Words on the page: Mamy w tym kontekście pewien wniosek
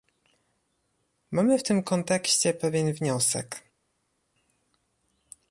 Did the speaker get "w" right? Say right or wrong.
right